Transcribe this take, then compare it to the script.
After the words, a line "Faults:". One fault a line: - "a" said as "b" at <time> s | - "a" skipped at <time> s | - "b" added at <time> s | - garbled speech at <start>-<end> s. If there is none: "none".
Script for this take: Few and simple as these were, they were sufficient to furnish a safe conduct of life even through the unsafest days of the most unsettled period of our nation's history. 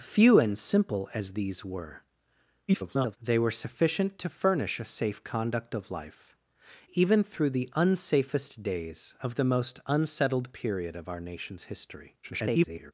Few and simple as these were, [garbled] they were sufficient to furnish a safe conduct of life even through the unsafest days of the most unsettled period of our nation's history. [garbled]
Faults:
- garbled speech at 2.7-3.2 s
- garbled speech at 12.2-12.9 s